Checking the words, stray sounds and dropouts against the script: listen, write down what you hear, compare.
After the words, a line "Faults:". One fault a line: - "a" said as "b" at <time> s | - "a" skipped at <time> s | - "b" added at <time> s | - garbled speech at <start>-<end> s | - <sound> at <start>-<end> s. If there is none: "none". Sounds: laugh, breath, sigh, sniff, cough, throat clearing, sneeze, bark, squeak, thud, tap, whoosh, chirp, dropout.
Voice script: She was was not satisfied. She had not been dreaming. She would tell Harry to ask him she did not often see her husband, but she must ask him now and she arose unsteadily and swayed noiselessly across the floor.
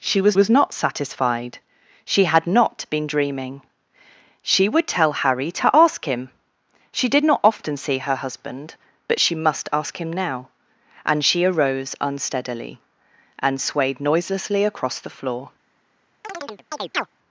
She was was not satisfied. She had not been dreaming. She would tell Harry to ask him she did not often see her husband, but she must ask him now and she arose unsteadily and swayed noiselessly across the floor.
Faults:
- chirp at 16.2-17.1 s